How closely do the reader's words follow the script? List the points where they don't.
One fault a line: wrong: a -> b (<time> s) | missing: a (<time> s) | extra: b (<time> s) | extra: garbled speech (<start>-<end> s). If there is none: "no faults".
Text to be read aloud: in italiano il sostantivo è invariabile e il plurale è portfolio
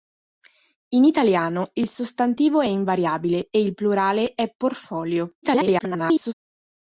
extra: garbled speech (5.4-6.3 s)